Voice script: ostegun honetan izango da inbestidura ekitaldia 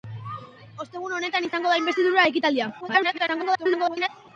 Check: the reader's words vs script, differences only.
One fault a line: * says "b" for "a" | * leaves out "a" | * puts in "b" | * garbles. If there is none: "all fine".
* garbles